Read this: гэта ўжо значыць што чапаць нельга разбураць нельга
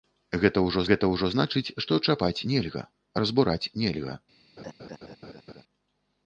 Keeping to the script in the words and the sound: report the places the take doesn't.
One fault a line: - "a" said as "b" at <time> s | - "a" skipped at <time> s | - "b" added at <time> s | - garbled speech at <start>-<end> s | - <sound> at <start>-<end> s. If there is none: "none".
- "гэта ўжо" added at 0.9 s
- laugh at 4.6-5.6 s